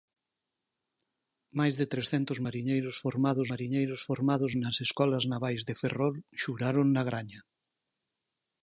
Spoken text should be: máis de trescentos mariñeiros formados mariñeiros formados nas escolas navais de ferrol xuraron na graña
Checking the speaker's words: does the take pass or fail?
pass